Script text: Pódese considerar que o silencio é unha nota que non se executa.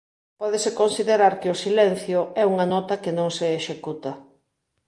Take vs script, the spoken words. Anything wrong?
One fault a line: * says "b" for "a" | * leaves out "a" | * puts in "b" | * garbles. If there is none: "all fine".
all fine